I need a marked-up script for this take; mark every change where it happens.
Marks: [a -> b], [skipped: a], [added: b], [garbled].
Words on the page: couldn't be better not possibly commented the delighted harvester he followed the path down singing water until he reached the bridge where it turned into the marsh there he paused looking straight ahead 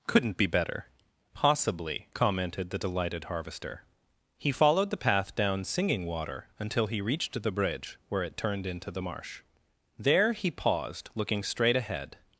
couldn't be better [skipped: not] possibly commented the delighted harvester he followed the path down singing water until he reached the bridge where it turned into the marsh there he paused looking straight ahead